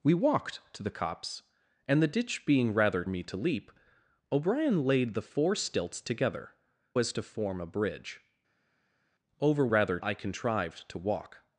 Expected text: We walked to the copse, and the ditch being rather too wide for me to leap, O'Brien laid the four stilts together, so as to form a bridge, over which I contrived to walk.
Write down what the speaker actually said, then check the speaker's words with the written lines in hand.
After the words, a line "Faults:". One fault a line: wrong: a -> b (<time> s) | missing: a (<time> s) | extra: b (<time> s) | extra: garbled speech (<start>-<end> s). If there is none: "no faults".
We walked to the copse, and the ditch being rather me to leap, O'Brien laid the four stilts together, as to form a bridge, over rather I contrived to walk.
Faults:
missing: too wide for (3.0 s)
missing: so (6.5 s)
wrong: which -> rather (9.7 s)